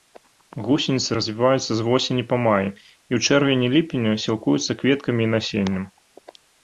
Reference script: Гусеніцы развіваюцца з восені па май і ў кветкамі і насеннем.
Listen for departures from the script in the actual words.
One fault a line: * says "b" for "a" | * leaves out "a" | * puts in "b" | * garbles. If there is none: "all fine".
* puts in "чэрвені ліпені сілкуюцца"